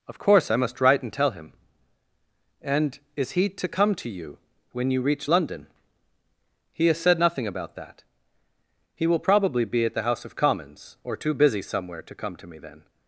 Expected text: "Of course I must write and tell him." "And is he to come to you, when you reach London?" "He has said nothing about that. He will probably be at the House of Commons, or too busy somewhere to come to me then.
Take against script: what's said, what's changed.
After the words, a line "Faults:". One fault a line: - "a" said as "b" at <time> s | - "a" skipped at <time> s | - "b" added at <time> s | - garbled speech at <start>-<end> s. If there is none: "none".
"Of course I must write and tell him." "And is he to come to you, when you reach London?" "He has said nothing about that. He will probably be at the House of Commons, or too busy somewhere to come to me then.
Faults:
none